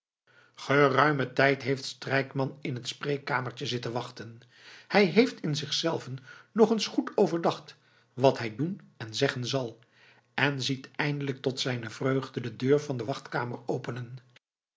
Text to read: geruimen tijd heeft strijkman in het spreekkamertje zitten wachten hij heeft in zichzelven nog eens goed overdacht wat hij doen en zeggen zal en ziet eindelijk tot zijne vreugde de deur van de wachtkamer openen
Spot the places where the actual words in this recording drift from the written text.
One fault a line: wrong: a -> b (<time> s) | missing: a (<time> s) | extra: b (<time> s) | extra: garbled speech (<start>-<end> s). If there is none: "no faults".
no faults